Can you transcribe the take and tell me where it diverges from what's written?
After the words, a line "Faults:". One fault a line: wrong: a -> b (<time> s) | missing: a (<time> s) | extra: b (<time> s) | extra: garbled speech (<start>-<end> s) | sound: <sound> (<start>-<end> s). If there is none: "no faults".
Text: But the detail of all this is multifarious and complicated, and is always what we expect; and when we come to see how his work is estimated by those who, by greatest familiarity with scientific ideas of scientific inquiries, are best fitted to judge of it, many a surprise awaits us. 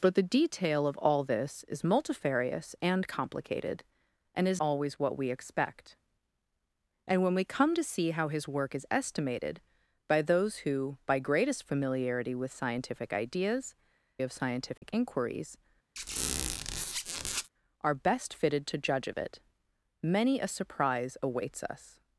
But the detail of all this is multifarious and complicated, and is always what we expect; and when we come to see how his work is estimated by those who, by greatest familiarity with scientific ideas of scientific inquiries, are best fitted to judge of it, many a surprise awaits us.
Faults:
sound: dropout (14.8-14.8 s)
sound: squeak (16.0-17.5 s)